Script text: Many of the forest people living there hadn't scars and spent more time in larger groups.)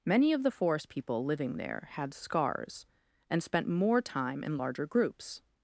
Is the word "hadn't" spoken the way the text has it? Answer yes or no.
no